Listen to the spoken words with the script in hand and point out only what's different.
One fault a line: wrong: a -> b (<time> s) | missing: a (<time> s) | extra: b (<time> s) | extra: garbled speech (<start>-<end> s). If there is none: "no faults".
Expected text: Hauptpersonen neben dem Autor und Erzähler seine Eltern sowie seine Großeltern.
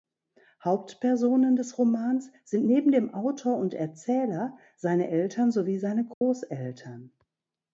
extra: des Romans sind (1.6 s)